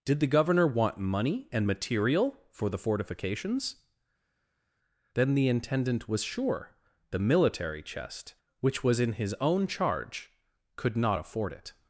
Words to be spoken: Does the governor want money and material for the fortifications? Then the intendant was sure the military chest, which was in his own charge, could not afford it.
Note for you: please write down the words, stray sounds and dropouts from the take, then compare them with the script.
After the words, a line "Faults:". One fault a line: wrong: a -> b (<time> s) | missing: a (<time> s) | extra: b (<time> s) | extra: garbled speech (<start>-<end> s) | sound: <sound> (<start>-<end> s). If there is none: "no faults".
Did the governor want money and material for the fortifications? Then the intendant was sure the military chest, which was in his own charge, could not afford it.
Faults:
wrong: Does -> Did (0.0 s)